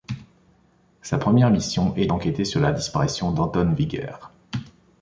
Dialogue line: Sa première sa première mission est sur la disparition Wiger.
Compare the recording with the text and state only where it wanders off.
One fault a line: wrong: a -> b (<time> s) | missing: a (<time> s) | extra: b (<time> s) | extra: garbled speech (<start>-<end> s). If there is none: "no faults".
missing: sa première (1.5 s)
extra: d'enquêter (2.0 s)
extra: d'Anton (3.3 s)